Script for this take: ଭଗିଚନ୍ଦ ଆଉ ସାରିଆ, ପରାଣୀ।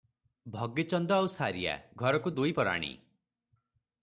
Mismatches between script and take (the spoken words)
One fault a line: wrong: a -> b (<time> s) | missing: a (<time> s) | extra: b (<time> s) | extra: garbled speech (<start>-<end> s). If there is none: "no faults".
extra: ଘରକୁ ଦୁଇ (1.9 s)